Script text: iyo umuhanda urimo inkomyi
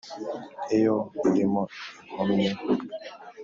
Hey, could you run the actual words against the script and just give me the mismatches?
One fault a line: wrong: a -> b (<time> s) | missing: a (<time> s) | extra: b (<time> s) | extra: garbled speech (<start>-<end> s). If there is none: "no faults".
missing: umuhanda (0.9 s)